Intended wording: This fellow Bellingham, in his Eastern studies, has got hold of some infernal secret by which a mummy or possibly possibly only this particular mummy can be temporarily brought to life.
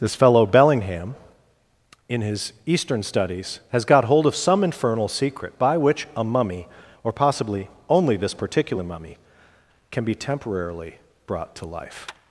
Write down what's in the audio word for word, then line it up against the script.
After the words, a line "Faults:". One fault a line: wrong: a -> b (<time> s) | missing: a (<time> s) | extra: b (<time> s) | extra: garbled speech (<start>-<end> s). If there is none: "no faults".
This fellow Bellingham, in his Eastern studies, has got hold of some infernal secret by which a mummy or possibly only this particular mummy can be temporarily brought to life.
Faults:
missing: possibly (7.7 s)